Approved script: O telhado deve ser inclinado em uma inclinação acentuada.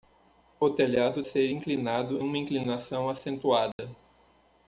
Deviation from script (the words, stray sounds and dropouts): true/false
true